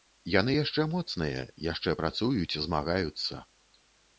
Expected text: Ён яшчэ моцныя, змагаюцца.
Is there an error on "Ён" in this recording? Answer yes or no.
yes